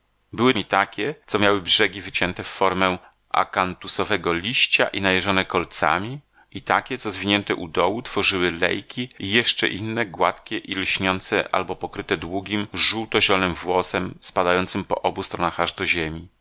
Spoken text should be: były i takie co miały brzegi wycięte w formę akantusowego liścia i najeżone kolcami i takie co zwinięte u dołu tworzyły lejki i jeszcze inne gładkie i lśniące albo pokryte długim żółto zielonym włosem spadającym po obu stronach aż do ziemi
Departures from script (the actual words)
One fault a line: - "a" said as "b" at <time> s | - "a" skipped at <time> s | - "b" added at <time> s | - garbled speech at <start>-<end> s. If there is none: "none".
none